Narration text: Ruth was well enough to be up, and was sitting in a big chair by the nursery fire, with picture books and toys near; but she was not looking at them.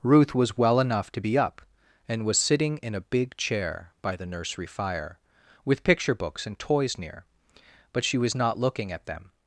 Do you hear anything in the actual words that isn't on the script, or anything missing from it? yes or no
no